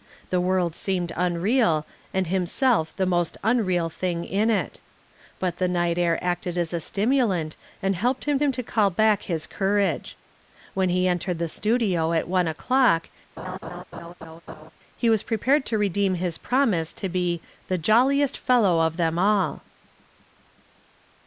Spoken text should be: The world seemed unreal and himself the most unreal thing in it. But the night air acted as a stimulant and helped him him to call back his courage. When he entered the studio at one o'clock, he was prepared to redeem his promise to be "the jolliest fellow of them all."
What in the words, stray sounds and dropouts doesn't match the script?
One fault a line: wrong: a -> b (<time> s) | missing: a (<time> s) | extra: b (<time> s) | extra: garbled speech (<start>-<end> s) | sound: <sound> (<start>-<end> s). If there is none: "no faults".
sound: laugh (13.4-14.7 s)